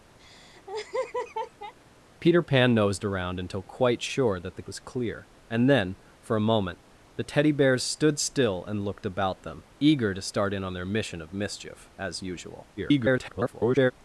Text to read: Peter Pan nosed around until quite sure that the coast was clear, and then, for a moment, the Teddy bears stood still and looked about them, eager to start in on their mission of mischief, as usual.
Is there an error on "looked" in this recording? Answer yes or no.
no